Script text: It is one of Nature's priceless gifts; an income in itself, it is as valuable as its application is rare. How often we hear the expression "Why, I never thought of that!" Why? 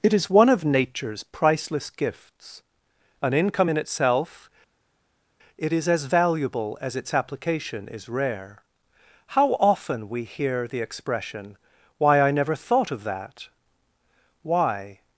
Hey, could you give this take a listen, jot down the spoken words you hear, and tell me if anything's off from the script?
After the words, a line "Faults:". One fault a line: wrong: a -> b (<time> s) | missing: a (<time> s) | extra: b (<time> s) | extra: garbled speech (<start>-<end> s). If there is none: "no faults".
It is one of Nature's priceless gifts; an income in itself, it is as valuable as its application is rare. How often we hear the expression "Why, I never thought of that!" Why?
Faults:
no faults